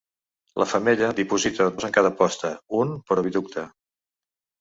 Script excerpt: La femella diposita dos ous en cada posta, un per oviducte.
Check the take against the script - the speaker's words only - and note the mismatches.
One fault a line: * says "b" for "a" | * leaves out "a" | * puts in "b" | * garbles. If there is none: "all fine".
* leaves out "dos"